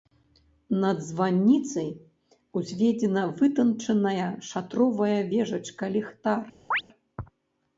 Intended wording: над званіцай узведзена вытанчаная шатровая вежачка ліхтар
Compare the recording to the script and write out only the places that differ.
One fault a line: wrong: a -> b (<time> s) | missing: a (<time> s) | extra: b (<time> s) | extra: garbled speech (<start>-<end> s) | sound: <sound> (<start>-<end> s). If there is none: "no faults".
sound: chirp (6.7-6.8 s)